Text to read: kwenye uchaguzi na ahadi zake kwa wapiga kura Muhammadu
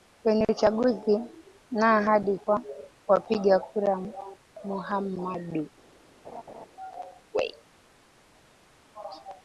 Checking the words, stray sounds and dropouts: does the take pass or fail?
fail